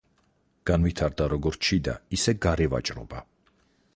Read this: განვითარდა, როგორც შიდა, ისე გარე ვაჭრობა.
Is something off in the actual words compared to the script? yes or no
no